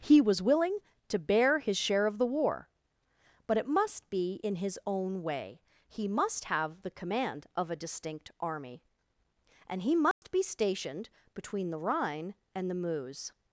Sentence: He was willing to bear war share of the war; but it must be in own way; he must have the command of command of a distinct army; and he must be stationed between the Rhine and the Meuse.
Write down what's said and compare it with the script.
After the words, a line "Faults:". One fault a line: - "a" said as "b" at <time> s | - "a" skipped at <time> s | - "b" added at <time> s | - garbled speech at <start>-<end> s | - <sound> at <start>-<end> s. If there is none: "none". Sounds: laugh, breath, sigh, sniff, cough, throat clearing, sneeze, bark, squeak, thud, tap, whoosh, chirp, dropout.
He was willing to bear his share of the war; but it must be in his own way; he must have the command of a distinct army; and he must be stationed between the Rhine and the Meuse.
Faults:
- "war" said as "his" at 1.6 s
- "his" added at 4.5 s
- "command of" skipped at 7.7 s
- dropout at 10.1-10.2 s